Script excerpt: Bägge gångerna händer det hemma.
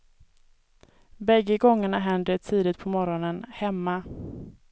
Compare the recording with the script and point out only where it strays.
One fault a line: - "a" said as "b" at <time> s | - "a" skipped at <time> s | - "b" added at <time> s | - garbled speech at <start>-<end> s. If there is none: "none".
- "tidigt på morgonen" added at 2.4 s